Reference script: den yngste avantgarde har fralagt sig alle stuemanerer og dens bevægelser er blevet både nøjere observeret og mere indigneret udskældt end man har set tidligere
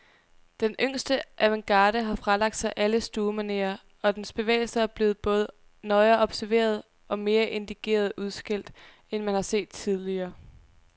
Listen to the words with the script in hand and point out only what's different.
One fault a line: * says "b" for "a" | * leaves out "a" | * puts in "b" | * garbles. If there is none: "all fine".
all fine